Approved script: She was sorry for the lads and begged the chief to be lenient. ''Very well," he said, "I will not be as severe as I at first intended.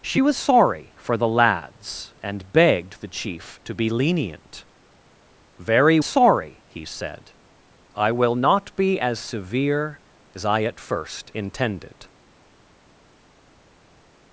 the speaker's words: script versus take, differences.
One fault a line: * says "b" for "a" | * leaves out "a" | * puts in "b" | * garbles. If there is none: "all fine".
* says "sorry" for "well"